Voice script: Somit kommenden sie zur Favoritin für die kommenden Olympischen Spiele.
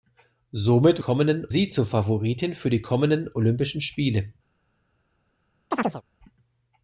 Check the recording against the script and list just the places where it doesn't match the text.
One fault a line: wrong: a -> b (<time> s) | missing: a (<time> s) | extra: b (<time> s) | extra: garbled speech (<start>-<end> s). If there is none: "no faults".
no faults